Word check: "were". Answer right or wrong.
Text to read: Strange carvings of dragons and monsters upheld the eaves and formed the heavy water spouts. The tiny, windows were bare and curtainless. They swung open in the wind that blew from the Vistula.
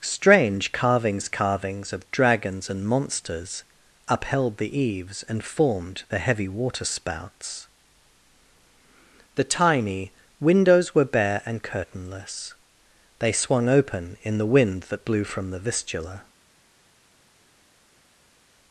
right